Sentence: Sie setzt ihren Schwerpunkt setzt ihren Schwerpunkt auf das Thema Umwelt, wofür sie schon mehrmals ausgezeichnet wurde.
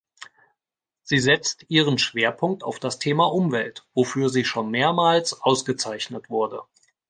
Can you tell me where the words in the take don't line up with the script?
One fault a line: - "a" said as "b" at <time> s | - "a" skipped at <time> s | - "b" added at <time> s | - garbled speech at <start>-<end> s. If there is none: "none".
- "setzt ihren Schwerpunkt" skipped at 2.6 s